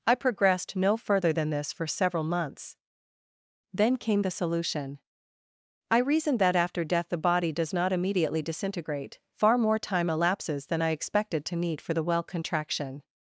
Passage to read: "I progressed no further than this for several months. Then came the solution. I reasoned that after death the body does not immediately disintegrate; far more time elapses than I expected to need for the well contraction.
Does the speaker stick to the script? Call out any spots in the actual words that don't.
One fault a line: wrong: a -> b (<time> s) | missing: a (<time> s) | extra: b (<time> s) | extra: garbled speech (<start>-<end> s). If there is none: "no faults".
no faults